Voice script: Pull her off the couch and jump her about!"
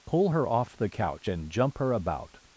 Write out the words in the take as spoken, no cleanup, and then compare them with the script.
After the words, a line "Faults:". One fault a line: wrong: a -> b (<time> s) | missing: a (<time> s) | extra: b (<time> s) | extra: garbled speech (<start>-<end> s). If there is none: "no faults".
Pull her off the couch and jump her about!"
Faults:
no faults